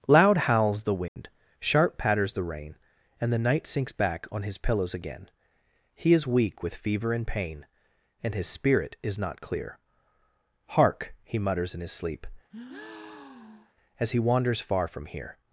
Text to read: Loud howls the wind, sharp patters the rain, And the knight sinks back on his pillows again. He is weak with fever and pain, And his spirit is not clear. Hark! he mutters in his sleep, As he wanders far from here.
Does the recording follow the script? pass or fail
pass